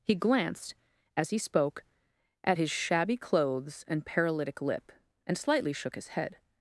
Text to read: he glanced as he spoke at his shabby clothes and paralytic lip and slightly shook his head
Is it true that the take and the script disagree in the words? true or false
false